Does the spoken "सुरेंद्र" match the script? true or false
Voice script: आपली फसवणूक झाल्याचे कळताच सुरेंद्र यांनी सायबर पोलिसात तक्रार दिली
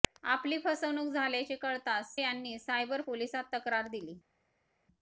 false